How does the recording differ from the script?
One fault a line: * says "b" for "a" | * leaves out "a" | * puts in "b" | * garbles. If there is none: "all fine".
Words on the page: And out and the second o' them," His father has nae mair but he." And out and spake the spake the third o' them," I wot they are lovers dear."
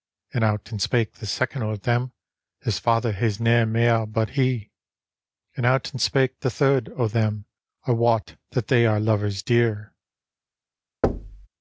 * puts in "spake"
* leaves out "spake the"
* puts in "that"